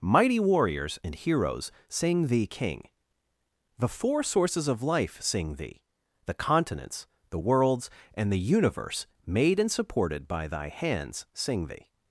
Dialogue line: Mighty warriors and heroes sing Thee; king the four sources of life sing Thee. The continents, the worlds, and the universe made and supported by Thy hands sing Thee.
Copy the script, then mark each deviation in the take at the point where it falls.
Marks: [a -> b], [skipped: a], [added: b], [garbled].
Mighty warriors and heroes sing Thee; king the four sources of life sing Thee. The continents, the worlds, and the universe made and supported by Thy hands sing Thee.